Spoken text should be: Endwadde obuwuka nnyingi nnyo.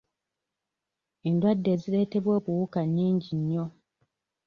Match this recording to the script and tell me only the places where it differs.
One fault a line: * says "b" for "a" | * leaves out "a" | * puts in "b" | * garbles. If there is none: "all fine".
* puts in "ezireetebwa"